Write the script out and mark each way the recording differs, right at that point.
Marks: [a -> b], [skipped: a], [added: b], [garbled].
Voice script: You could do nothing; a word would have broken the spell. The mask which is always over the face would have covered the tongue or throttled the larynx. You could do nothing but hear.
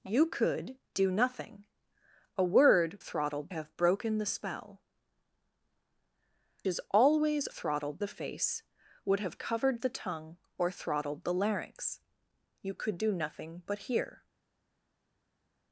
You could do nothing; a word [would -> throttled] have broken the spell. [skipped: The mask which] is always [over -> throttled] the face would have covered the tongue or throttled the larynx. You could do nothing but hear.